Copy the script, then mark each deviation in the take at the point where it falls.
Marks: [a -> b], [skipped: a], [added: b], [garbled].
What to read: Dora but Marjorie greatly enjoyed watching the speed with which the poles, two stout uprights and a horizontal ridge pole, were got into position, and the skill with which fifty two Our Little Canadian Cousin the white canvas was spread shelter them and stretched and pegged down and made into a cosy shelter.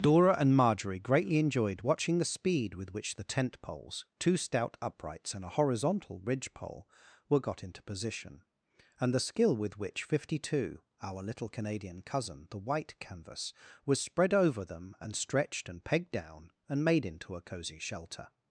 Dora [but -> and] Marjorie greatly enjoyed watching the speed with which the [added: tent] poles, two stout uprights and a horizontal ridge pole, were got into position, and the skill with which fifty two Our Little Canadian Cousin the white canvas was spread [shelter -> over] them and stretched and pegged down and made into a cosy shelter.